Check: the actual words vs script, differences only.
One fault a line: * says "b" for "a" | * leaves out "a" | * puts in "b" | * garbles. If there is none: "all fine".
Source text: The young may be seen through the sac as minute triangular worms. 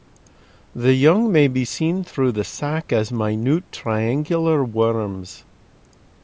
all fine